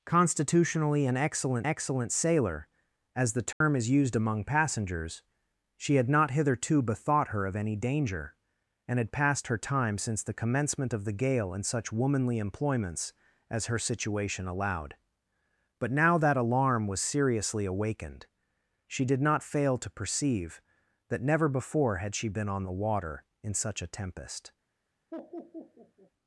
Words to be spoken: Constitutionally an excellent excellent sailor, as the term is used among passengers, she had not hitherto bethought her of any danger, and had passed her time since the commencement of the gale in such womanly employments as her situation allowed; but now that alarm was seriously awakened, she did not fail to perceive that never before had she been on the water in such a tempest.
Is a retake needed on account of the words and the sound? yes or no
yes